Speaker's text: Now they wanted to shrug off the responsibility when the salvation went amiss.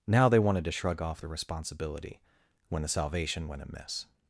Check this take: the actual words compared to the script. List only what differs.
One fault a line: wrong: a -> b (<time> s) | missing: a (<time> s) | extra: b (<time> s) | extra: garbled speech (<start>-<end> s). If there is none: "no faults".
no faults